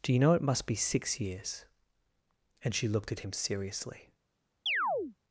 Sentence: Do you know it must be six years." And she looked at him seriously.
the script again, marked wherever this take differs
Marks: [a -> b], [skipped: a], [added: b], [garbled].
Do you know it must be six years." And she looked at him seriously.